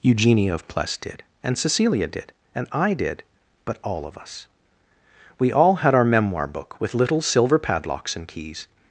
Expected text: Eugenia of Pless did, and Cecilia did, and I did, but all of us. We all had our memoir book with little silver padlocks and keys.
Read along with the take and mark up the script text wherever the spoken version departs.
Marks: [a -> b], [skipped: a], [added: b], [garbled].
Eugenia of Pless did, and Cecilia did, and I did, but all of us. We all had our memoir book with little silver padlocks and keys.